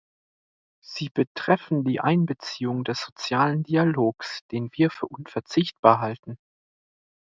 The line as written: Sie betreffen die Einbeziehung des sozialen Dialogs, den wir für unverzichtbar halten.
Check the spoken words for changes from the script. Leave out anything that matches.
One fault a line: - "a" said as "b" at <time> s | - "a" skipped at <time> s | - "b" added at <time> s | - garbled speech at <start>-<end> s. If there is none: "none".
none